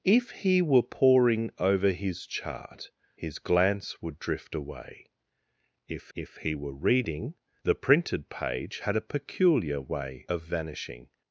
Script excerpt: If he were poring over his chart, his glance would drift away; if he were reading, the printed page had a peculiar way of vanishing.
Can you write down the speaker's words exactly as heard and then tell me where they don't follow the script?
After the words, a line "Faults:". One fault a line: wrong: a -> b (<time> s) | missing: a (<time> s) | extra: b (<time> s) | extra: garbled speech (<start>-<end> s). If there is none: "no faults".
If he were poring over his chart, his glance would drift away; if if he were reading, the printed page had a peculiar way of vanishing.
Faults:
extra: if (6.1 s)